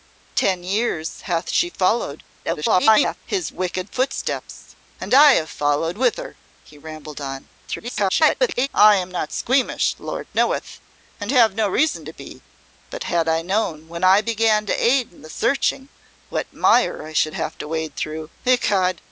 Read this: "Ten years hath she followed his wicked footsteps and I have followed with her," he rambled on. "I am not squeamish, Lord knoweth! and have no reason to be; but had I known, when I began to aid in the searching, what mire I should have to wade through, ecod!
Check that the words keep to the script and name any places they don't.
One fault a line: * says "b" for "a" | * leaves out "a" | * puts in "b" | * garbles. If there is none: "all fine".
* garbles
* garbles